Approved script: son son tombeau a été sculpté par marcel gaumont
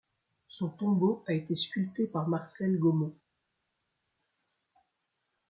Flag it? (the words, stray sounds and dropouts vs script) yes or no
yes